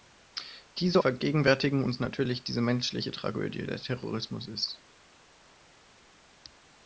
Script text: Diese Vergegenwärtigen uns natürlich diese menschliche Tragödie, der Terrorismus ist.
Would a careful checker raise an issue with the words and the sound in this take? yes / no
no